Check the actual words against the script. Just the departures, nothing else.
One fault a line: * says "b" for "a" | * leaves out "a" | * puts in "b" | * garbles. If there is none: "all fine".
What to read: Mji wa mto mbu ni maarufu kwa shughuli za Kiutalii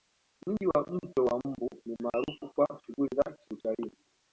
* puts in "wa"